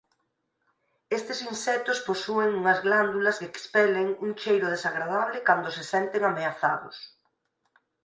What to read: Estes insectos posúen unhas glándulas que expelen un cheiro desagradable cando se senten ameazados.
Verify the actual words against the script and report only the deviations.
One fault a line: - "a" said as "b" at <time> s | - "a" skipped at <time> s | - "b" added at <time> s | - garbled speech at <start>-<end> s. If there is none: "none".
none